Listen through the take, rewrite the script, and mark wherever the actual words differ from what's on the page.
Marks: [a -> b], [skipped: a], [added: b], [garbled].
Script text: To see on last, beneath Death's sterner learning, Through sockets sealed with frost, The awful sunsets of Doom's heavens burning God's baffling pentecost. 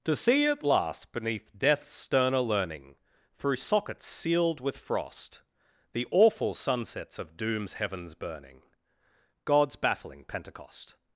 To see [on -> at] last, beneath Death's sterner learning, Through sockets sealed with frost, The awful sunsets of Doom's heavens burning God's baffling pentecost.